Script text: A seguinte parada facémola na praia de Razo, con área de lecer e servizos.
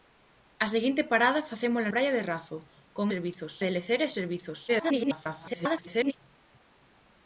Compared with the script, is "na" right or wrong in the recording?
wrong